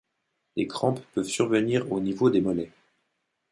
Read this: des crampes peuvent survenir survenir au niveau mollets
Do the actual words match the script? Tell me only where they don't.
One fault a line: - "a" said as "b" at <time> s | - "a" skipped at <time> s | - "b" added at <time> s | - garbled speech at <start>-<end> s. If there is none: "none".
- "survenir" skipped at 1.9 s
- "des" added at 2.3 s